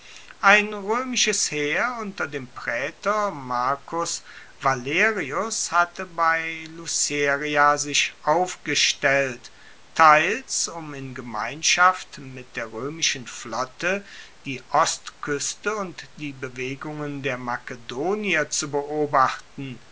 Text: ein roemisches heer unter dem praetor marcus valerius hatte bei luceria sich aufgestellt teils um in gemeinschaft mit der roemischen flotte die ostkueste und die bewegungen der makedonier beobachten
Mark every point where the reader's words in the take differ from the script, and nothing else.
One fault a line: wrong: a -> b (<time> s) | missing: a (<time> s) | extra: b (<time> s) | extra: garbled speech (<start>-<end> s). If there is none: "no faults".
extra: zu (18.5 s)